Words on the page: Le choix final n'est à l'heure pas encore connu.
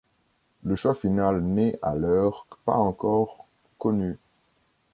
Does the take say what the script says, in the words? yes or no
yes